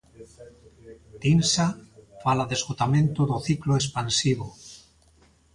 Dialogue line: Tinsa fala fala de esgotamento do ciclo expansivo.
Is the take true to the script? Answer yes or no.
no